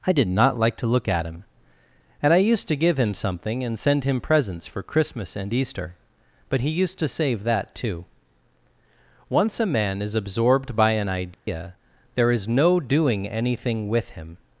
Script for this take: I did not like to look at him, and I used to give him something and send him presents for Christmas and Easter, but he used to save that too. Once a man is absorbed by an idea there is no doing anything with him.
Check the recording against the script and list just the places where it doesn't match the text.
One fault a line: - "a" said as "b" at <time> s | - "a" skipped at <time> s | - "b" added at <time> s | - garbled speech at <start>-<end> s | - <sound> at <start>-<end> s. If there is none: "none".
- dropout at 11.3-11.5 s